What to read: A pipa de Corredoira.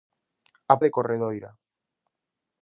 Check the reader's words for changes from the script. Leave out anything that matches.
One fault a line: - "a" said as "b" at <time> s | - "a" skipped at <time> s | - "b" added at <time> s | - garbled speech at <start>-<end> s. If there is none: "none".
- "pipa" skipped at 0.8 s